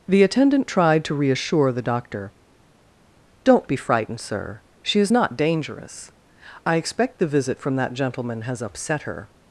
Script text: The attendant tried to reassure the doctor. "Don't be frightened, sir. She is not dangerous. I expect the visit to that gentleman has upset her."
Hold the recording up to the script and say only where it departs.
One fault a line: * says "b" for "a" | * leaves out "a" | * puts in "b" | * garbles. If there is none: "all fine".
* says "from" for "to"